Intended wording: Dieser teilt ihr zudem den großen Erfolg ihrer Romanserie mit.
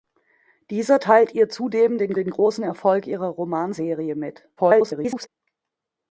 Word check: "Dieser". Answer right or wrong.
right